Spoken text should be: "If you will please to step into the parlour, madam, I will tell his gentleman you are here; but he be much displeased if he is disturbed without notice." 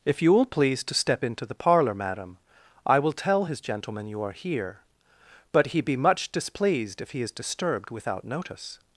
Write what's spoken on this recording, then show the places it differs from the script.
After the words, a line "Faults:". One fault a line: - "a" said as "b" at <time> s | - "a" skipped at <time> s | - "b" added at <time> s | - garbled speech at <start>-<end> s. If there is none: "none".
"If you will please to step into the parlour, madam, I will tell his gentleman you are here; but he be much displeased if he is disturbed without notice."
Faults:
none